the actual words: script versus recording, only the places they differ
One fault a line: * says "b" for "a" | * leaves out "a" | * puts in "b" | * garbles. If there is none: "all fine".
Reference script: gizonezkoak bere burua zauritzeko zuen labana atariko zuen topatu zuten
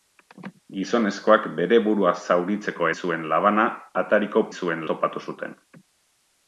all fine